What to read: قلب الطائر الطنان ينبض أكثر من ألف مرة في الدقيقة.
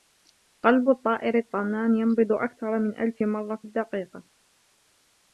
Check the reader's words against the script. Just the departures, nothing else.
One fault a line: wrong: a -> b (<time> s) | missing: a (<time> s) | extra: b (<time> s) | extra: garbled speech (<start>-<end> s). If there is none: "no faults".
no faults